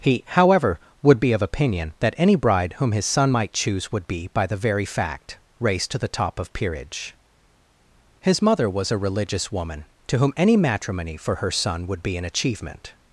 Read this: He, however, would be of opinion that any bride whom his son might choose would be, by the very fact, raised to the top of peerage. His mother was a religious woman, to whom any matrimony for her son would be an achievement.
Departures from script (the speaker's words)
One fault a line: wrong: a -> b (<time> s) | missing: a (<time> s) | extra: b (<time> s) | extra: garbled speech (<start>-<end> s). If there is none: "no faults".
no faults